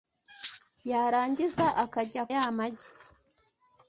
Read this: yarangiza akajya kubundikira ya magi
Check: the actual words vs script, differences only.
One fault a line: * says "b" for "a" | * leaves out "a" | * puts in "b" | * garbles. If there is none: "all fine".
* leaves out "kubundikira"